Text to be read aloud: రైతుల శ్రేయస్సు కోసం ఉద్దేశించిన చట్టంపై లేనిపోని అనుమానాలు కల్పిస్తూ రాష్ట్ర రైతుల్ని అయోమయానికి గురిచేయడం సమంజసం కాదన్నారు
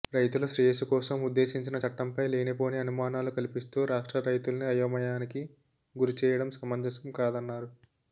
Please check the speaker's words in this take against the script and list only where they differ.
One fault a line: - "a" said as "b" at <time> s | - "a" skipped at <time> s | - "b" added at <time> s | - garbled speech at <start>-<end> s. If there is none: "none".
none